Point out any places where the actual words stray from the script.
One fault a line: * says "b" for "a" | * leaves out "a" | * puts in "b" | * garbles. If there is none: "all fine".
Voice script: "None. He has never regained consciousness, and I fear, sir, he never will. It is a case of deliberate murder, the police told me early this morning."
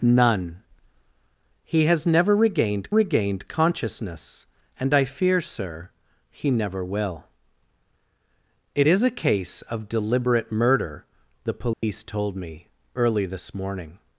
* puts in "regained"